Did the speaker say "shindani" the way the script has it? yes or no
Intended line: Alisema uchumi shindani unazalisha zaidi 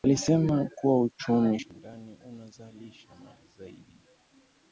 yes